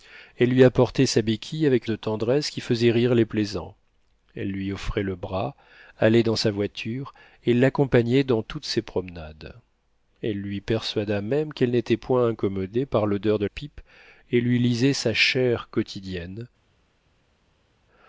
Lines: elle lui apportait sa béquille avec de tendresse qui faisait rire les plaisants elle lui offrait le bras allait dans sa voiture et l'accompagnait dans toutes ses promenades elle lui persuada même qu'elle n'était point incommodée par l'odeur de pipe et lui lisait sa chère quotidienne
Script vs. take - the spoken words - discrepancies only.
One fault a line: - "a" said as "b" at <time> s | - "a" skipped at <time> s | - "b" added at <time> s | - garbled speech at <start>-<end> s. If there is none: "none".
none